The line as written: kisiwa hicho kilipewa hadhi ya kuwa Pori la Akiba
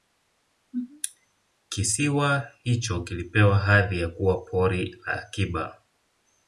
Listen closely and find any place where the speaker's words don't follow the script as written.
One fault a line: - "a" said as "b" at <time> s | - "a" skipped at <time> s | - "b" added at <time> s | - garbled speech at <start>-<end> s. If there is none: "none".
none